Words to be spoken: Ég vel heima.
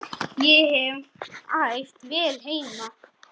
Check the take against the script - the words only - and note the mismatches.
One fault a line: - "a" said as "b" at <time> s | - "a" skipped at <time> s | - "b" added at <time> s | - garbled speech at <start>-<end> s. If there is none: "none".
- "hef æft" added at 0.8 s